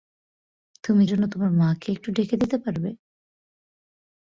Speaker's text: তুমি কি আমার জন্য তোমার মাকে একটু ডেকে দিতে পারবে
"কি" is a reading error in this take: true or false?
true